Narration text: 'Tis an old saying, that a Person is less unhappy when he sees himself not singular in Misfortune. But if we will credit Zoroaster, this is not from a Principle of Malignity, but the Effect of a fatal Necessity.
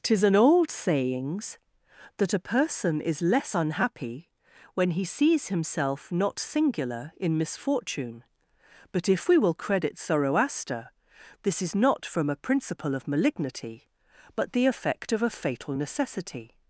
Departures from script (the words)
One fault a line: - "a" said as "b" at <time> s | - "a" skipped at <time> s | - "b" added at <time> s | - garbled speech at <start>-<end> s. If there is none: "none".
- "saying" said as "sayings" at 0.7 s